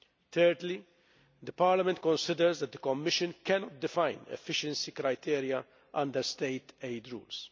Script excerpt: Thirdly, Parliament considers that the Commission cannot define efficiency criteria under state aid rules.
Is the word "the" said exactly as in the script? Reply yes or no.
yes